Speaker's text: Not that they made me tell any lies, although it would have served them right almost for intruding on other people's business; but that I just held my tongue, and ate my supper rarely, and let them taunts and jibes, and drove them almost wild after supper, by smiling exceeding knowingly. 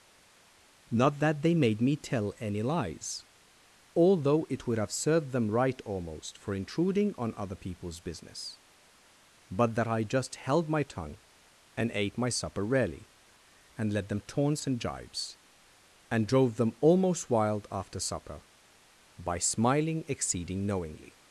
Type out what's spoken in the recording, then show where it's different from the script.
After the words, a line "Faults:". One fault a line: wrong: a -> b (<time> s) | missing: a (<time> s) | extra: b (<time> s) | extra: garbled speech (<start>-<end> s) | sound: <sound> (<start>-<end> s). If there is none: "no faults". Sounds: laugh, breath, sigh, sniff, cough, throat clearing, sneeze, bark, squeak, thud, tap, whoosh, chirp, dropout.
Not that they made me tell any lies, although it would have served them right almost for intruding on other people's business; but that I just held my tongue, and ate my supper rarely, and let them taunts and jibes, and drove them almost wild after supper, by smiling exceeding knowingly.
Faults:
no faults